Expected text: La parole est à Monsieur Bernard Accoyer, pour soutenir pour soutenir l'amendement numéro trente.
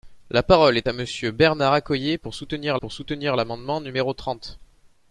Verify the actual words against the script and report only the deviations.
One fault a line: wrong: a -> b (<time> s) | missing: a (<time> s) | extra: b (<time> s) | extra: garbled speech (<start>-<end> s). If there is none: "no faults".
no faults